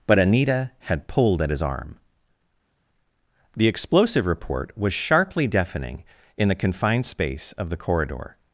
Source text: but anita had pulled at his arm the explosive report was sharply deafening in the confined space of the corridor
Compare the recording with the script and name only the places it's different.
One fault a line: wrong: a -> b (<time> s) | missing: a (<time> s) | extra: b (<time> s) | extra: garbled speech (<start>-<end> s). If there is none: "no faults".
no faults